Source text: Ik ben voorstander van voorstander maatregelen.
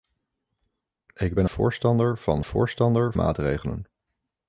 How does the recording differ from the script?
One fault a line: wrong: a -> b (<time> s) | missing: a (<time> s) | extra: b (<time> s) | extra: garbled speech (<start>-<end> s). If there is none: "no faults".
no faults